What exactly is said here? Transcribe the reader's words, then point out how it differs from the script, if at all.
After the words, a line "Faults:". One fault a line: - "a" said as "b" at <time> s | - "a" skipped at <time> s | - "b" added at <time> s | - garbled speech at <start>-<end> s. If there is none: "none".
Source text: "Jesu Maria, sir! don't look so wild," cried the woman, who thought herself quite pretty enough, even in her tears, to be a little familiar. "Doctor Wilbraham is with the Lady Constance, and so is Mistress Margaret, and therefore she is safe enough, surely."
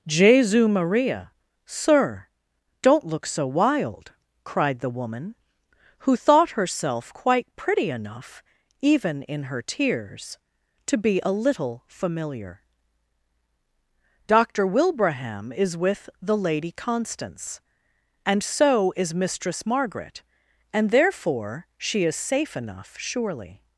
"Jesu Maria, sir! don't look so wild," cried the woman, who thought herself quite pretty enough, even in her tears, to be a little familiar. "Doctor Wilbraham is with the Lady Constance, and so is Mistress Margaret, and therefore she is safe enough, surely."
Faults:
none